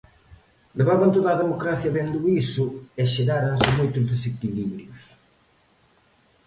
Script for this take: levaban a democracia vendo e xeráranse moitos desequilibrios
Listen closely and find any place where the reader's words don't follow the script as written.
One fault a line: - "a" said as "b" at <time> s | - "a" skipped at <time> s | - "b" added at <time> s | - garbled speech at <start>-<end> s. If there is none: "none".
- "toda" added at 1.1 s
- "iso" added at 2.4 s